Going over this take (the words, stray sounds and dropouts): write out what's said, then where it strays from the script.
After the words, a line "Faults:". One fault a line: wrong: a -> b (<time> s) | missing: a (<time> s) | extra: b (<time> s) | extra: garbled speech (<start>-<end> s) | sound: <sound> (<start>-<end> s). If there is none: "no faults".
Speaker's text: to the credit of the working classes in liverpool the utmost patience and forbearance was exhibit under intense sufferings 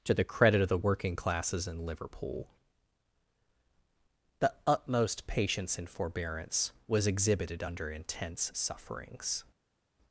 to the credit of the working classes in liverpool the utmost patience and forbearance was exhibited under intense sufferings
Faults:
wrong: exhibit -> exhibited (7.0 s)